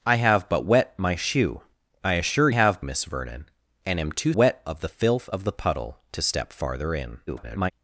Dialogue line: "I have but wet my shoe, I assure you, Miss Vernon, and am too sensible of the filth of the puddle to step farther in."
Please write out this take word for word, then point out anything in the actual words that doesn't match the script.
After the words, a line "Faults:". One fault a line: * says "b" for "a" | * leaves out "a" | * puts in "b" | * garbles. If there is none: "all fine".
"I have but wet my shoe, I assure have, Miss Vernon, and am too wet of the filth of the puddle to step farther in." [garbled]
Faults:
* says "have" for "you"
* says "wet" for "sensible"
* garbles